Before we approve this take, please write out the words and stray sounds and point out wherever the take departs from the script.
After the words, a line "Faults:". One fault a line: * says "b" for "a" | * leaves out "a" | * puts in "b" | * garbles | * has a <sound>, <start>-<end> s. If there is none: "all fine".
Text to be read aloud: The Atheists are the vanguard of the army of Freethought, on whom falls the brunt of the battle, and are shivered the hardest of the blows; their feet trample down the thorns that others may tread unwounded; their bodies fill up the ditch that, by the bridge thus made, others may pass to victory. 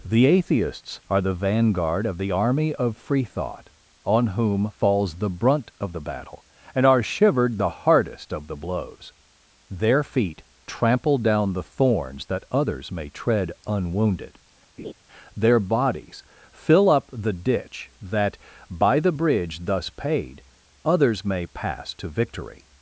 The Atheists are the vanguard of the army of Freethought, on whom falls the brunt of the battle, and are shivered the hardest of the blows; their feet trample down the thorns that others may tread unwounded; their bodies fill up the ditch that, by the bridge thus paid, others may pass to victory.
Faults:
* has a laugh, 14.8-14.9 s
* says "paid" for "made"